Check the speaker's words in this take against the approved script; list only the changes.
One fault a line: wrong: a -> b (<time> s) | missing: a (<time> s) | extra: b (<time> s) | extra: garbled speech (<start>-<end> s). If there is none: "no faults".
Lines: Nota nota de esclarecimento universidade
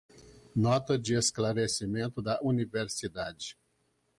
missing: nota (1.0 s)
extra: da (2.2 s)